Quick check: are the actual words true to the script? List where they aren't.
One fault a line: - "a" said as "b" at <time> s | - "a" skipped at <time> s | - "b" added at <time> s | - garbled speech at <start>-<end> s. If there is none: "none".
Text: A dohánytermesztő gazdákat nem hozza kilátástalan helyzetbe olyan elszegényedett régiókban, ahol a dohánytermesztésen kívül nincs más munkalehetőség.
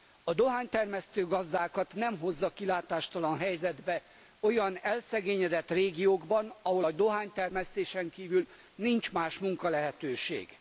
none